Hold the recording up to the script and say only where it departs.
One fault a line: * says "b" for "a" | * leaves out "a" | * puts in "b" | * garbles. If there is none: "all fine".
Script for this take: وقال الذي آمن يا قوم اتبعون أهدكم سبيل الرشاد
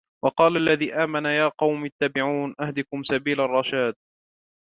all fine